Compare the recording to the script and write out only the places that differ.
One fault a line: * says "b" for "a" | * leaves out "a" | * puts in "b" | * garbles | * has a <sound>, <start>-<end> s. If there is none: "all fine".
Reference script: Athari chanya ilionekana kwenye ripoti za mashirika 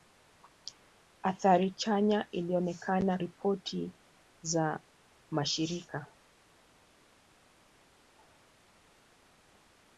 * leaves out "kwenye"